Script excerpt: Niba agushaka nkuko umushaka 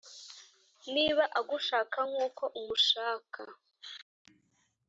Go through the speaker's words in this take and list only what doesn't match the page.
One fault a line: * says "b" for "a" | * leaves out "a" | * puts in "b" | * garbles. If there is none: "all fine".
all fine